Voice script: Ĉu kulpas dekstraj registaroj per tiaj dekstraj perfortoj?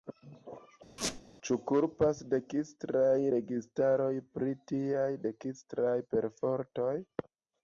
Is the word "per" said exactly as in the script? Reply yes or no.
no